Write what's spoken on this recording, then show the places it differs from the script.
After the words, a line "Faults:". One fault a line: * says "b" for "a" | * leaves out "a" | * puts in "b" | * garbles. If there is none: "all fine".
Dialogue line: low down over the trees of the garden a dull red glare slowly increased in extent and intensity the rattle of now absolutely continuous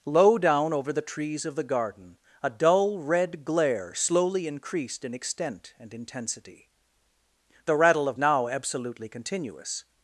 low down over the trees of the garden a dull red glare slowly increased in extent and intensity the rattle of now absolutely continuous
Faults:
all fine